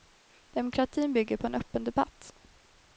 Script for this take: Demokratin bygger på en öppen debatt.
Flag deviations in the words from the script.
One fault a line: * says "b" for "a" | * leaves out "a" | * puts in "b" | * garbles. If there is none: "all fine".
all fine